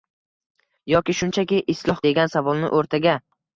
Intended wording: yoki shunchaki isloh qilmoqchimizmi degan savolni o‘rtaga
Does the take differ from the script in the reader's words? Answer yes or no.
yes